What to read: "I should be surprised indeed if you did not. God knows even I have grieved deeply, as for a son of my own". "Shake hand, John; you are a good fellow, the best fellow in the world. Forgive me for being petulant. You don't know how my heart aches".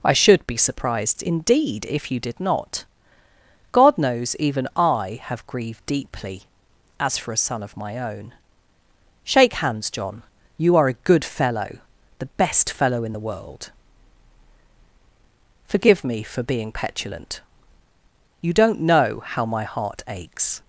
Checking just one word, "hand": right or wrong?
wrong